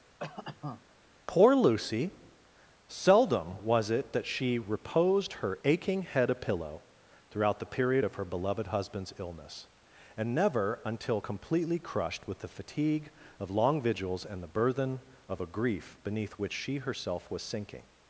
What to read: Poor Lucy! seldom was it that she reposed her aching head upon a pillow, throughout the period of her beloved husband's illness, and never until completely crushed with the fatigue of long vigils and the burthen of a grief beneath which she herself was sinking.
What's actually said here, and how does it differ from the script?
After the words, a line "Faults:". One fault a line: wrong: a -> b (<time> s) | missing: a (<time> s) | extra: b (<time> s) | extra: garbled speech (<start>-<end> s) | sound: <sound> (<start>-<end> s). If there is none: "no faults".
Poor Lucy! seldom was it that she reposed her aching head a pillow, throughout the period of her beloved husband's illness, and never until completely crushed with the fatigue of long vigils and the burthen of a grief beneath which she herself was sinking.
Faults:
sound: cough (0.2-0.9 s)
missing: upon (6.3 s)